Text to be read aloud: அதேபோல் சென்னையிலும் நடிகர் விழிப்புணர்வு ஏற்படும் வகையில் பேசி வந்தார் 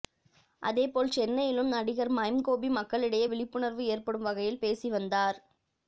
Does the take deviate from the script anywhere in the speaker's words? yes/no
yes